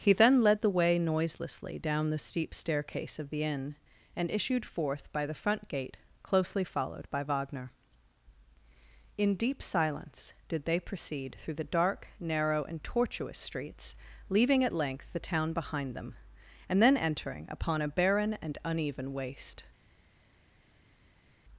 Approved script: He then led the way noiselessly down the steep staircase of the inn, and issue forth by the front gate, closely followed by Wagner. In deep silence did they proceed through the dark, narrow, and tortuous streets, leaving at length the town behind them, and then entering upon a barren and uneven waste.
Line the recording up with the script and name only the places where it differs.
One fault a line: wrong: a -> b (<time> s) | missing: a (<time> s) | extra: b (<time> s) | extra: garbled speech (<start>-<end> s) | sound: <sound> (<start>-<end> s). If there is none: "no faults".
wrong: issue -> issued (4.3 s)